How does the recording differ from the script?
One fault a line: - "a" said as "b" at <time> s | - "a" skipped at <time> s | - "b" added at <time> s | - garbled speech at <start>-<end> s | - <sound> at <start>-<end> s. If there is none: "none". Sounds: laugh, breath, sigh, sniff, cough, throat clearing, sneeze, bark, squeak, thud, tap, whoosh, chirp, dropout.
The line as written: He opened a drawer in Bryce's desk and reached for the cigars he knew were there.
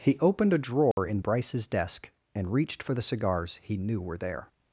- dropout at 0.9-1.0 s